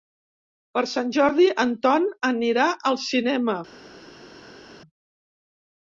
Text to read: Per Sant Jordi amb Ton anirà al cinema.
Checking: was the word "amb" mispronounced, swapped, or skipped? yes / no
yes